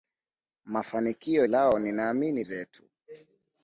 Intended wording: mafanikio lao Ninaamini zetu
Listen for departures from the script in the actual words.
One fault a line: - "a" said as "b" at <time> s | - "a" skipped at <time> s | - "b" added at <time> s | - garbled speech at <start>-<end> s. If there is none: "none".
none